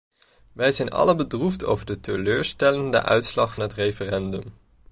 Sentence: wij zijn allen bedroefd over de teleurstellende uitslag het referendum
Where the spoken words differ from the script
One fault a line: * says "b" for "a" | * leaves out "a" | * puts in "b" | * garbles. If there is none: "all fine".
all fine